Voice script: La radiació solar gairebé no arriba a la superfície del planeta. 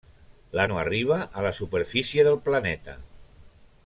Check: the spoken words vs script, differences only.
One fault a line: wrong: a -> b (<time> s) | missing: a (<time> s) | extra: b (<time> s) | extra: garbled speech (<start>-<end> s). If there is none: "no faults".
missing: radiació solar gairebé (0.6 s)